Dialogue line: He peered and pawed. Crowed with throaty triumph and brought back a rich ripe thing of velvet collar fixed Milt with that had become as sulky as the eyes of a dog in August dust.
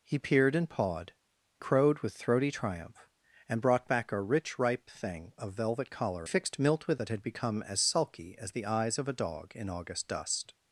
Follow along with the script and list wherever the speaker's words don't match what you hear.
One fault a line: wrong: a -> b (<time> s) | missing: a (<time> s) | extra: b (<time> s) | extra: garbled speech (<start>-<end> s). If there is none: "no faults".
no faults